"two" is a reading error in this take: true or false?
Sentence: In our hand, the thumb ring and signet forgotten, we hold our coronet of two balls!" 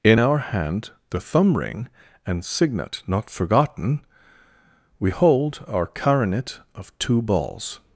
false